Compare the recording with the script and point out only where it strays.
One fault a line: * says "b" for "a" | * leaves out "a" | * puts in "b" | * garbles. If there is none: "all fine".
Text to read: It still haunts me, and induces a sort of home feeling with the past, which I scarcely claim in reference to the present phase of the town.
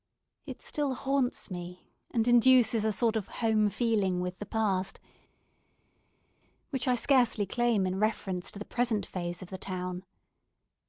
all fine